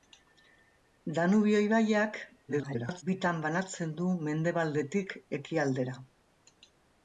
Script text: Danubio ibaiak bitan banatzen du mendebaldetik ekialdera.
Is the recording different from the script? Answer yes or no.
yes